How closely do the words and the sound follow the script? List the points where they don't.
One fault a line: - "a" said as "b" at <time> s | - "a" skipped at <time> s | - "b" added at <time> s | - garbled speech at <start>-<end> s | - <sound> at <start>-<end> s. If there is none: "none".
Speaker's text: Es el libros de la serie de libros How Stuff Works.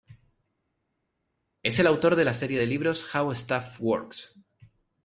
- "libros" said as "autor" at 1.9 s